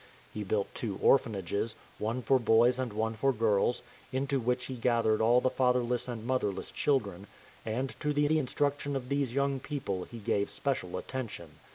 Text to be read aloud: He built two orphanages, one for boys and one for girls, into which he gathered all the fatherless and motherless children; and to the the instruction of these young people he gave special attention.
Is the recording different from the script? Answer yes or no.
no